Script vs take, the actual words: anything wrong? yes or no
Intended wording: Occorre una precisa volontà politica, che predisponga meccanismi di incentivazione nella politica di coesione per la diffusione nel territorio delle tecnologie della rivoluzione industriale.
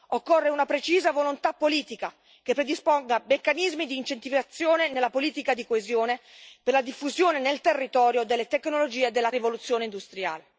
no